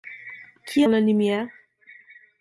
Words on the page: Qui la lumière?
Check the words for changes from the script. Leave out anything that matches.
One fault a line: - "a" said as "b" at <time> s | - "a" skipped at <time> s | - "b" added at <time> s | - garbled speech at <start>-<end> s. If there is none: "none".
none